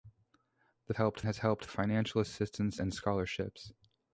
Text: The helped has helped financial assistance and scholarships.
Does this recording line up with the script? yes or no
yes